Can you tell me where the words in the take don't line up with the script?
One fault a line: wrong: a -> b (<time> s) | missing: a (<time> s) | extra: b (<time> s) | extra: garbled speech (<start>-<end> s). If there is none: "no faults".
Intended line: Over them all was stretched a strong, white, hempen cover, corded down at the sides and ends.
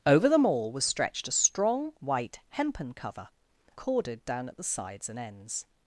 no faults